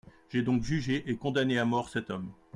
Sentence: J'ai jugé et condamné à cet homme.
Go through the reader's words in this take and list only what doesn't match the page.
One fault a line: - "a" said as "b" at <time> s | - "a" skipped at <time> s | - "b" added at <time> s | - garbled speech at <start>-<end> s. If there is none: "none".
- "donc" added at 0.4 s
- "mort" added at 1.6 s